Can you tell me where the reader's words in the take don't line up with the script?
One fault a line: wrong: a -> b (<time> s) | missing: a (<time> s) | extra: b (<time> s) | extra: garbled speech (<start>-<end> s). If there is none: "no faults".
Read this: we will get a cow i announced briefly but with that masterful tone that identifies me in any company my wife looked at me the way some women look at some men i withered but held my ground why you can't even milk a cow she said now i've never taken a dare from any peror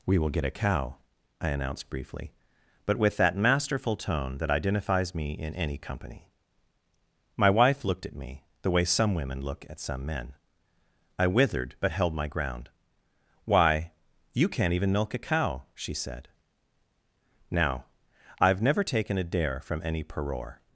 no faults